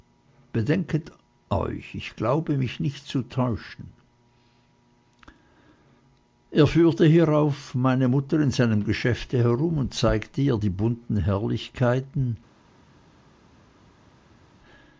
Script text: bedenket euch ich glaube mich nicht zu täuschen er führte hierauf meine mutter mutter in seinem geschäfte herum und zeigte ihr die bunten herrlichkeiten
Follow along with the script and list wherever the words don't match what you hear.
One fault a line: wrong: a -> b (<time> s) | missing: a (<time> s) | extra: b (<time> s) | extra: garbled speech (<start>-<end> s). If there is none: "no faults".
missing: mutter (8.4 s)